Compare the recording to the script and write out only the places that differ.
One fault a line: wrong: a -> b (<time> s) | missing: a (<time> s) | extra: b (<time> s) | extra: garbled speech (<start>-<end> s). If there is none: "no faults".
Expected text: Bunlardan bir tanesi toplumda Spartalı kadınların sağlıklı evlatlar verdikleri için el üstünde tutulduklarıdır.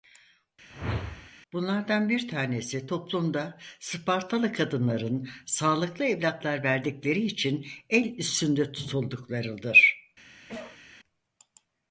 no faults